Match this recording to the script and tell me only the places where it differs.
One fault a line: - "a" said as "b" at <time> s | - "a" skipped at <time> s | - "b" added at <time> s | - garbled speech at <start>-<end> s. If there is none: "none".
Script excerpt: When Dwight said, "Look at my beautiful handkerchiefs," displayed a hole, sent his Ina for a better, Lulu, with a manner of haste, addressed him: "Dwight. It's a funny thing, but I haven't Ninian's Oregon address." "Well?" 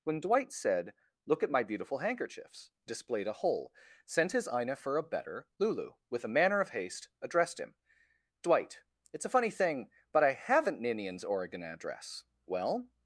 none